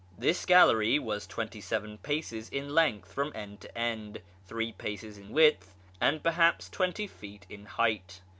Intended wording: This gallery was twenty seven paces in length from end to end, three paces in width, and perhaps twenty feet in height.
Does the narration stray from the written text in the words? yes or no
no